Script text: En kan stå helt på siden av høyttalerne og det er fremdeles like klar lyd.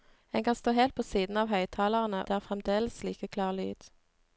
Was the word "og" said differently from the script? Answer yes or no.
yes